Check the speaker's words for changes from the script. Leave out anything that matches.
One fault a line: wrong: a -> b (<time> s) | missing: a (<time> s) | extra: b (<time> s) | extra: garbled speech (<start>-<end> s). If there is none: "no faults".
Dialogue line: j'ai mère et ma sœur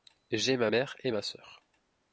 extra: ma (0.6 s)